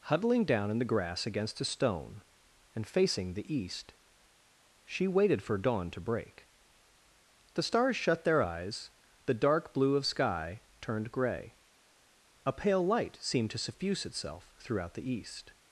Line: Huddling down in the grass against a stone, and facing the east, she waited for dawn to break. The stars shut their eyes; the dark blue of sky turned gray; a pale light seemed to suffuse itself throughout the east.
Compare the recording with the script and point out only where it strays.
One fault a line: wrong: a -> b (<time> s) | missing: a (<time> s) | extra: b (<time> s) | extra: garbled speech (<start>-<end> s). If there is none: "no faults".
no faults